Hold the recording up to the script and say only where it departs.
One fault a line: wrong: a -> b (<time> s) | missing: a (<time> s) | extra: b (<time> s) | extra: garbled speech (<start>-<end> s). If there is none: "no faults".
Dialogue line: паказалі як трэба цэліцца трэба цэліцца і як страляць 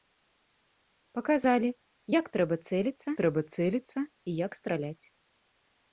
no faults